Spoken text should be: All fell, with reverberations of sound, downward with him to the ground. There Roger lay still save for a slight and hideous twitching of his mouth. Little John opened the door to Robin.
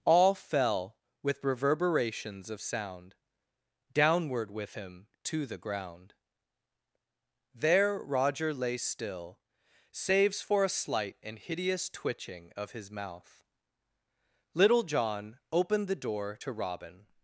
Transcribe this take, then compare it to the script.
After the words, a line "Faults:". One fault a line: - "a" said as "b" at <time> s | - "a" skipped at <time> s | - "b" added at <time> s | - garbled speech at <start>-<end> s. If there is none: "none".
All fell, with reverberations of sound, downward with him to the ground. There Roger lay still saves for a slight and hideous twitching of his mouth. Little John opened the door to Robin.
Faults:
- "save" said as "saves" at 9.9 s